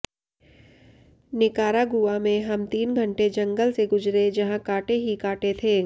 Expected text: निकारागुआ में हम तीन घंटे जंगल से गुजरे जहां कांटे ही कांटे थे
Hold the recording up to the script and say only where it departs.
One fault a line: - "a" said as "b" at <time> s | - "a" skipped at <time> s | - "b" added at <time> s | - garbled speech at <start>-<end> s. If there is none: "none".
none